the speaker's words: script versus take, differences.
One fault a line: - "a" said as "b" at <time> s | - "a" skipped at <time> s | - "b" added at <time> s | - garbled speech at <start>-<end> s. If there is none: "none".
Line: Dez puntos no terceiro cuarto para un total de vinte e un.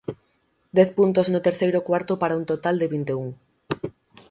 none